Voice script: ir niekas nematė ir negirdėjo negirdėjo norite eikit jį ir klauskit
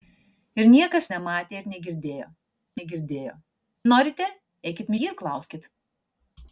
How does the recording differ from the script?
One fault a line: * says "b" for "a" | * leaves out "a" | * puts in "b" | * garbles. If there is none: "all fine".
all fine